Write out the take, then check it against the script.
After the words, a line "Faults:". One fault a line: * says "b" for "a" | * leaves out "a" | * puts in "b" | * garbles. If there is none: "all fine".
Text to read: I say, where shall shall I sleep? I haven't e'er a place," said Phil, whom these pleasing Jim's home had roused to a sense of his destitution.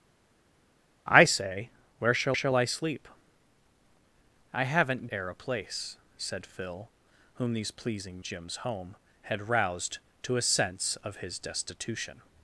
I say, where shall shall I sleep? I haven't e'er a place," said Phil, whom these pleasing Jim's home had roused to a sense of his destitution.
Faults:
all fine